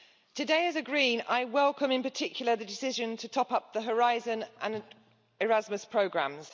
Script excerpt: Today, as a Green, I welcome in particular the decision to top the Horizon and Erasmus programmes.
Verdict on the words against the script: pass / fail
fail